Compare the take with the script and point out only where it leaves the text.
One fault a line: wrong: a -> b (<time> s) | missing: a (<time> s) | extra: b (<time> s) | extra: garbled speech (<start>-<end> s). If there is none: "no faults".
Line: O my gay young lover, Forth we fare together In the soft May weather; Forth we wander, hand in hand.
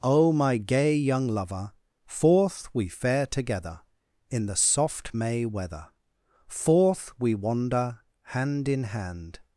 no faults